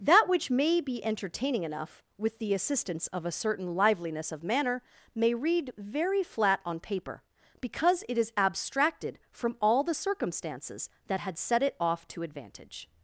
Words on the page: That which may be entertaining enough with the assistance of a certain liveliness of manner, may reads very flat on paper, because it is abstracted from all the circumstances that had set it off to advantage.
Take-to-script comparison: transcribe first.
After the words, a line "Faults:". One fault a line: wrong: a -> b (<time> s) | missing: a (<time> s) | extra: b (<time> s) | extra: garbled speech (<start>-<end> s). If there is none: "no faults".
That which may be entertaining enough with the assistance of a certain liveliness of manner, may read very flat on paper, because it is abstracted from all the circumstances that had set it off to advantage.
Faults:
wrong: reads -> read (5.3 s)